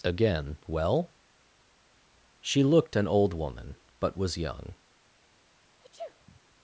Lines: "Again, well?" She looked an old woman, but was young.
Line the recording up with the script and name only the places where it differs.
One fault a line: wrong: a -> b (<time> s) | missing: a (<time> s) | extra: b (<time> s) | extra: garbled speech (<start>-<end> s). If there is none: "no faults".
no faults